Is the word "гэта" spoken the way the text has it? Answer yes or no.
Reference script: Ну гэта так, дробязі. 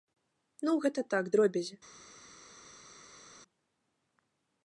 yes